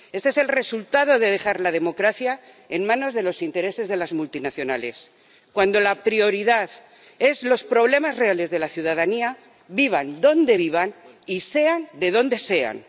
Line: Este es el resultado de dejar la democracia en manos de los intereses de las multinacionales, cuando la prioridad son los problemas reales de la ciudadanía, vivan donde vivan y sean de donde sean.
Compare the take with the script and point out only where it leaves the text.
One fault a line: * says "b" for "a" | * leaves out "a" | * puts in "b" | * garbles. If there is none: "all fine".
all fine